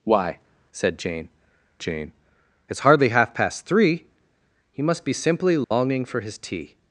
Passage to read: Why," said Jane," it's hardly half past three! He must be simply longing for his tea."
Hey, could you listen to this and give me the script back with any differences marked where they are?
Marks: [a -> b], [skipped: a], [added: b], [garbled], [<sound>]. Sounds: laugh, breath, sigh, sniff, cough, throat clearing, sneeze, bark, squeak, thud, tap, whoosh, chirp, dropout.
Why," said Jane," [added: Jane] it's hardly half past three! He must be simply longing [dropout] for his tea."